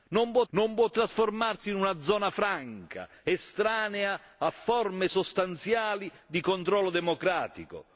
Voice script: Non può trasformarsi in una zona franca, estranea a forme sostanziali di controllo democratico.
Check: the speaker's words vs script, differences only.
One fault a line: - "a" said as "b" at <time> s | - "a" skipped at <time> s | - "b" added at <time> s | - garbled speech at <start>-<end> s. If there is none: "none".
- "non può" added at 0.5 s